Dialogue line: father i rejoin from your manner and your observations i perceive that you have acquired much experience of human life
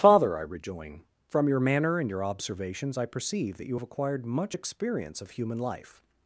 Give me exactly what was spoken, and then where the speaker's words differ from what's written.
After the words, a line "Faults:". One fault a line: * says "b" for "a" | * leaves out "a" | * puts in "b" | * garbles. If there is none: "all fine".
father i rejoin from your manner and your observations i perceive that you have acquired much experience of human life
Faults:
all fine